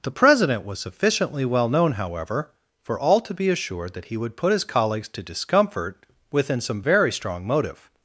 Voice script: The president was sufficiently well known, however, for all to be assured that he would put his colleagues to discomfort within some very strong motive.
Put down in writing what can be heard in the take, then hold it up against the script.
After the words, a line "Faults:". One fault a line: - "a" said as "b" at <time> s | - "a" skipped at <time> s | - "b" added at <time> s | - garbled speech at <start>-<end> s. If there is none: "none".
The president was sufficiently well known, however, for all to be assured that he would put his colleagues to discomfort within some very strong motive.
Faults:
none